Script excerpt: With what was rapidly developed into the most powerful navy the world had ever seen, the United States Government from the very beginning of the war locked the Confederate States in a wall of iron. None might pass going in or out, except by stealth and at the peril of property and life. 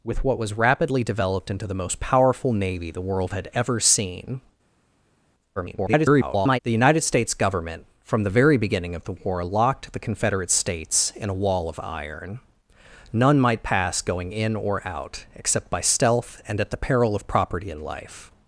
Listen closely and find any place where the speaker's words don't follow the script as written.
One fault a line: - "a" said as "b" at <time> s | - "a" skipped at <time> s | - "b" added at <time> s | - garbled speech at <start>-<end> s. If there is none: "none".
- garbled speech at 5.6-6.6 s